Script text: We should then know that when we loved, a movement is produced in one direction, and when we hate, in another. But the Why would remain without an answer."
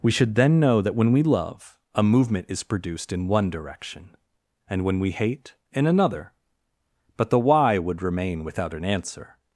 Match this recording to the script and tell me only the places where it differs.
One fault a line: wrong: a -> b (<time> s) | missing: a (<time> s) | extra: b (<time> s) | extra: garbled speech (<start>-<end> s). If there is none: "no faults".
wrong: loved -> love (1.2 s)